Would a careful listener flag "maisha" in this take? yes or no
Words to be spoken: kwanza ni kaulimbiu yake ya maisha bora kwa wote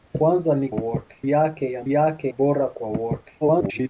yes